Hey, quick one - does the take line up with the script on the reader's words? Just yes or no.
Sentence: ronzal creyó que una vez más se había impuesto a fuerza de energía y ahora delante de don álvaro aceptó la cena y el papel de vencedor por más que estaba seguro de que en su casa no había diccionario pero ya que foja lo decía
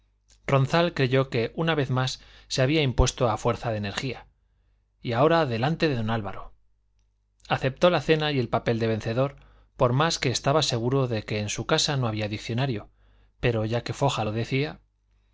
yes